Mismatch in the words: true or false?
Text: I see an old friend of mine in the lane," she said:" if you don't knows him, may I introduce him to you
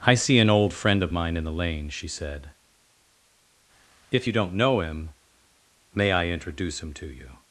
true